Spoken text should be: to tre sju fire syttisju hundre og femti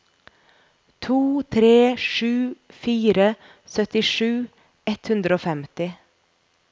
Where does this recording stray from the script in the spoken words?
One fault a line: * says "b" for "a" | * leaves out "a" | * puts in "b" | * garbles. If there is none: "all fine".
* puts in "ett"